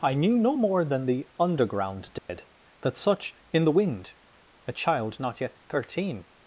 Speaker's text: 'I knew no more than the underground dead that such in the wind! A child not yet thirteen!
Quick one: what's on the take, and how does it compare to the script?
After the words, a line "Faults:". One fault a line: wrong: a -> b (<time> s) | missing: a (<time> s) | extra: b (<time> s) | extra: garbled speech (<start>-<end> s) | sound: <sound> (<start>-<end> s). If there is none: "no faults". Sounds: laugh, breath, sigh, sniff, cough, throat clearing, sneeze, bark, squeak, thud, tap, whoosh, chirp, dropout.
'I knew no more than the underground dead that such in the wind! A child not yet thirteen!
Faults:
sound: dropout (2.2-2.3 s)